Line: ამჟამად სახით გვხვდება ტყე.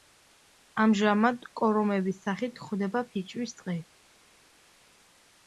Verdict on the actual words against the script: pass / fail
fail